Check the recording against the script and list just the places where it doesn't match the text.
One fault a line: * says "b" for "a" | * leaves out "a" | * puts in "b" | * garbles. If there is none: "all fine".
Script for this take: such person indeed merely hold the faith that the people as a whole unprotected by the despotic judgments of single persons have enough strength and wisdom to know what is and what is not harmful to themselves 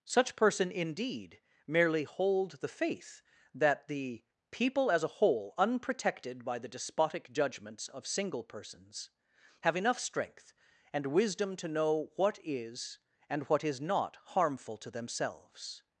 all fine